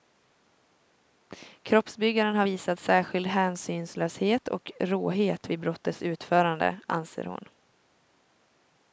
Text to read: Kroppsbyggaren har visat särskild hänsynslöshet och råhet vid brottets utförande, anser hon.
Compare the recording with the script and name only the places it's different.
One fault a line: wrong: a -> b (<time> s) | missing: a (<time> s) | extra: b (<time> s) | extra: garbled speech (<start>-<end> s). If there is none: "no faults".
no faults